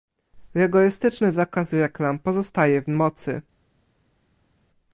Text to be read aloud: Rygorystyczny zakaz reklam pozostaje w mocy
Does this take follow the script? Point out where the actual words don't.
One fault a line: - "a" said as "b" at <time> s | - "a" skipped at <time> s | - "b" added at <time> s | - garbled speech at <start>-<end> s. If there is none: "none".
none